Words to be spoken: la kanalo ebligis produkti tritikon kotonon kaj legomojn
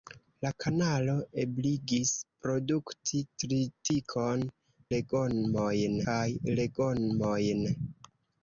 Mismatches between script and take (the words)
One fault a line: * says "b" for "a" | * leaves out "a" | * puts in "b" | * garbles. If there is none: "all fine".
* says "legomojn" for "kotonon"